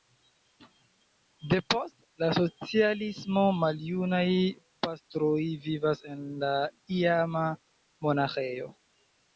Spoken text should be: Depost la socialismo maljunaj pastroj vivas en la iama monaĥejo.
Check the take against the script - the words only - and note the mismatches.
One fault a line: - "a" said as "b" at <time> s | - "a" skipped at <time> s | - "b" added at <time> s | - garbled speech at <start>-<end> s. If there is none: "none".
none